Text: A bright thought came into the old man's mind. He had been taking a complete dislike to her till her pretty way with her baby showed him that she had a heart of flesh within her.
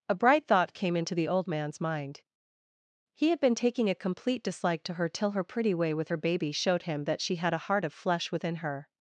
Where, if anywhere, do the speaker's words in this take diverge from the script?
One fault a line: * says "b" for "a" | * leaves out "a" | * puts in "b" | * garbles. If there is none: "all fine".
all fine